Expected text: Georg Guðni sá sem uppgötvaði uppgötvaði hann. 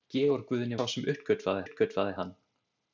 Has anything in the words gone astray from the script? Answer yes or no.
no